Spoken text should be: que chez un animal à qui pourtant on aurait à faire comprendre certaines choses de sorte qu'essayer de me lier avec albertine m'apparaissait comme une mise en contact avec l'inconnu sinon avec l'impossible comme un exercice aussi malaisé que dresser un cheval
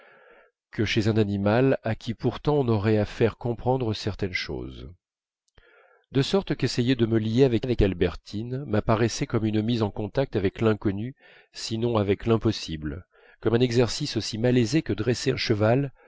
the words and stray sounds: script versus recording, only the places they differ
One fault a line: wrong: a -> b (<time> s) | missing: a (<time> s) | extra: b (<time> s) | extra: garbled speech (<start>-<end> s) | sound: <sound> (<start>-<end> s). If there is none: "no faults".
extra: avec (7.6 s)